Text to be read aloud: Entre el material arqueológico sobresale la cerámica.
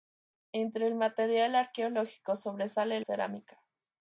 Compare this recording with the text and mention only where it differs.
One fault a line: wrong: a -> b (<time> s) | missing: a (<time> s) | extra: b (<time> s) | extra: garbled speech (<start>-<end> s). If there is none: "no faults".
missing: la (3.0 s)